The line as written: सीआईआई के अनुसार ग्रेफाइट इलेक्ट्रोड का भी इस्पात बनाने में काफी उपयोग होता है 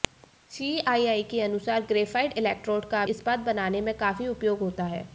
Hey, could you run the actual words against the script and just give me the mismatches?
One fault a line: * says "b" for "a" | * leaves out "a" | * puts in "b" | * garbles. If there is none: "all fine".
* leaves out "भी"